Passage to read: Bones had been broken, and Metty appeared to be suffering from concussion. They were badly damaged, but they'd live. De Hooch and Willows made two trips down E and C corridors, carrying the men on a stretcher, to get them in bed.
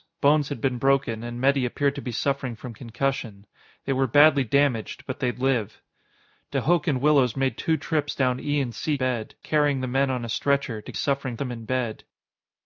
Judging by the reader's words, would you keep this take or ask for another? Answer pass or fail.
fail